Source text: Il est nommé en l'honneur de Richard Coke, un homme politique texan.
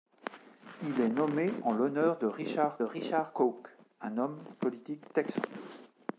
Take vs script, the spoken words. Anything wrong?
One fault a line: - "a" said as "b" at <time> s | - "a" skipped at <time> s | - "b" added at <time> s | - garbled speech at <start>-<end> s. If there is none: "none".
- "Richard" added at 2.8 s